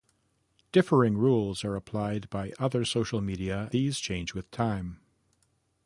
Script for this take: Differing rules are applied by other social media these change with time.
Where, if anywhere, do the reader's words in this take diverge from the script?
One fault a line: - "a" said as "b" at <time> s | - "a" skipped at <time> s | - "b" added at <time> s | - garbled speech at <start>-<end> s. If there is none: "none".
none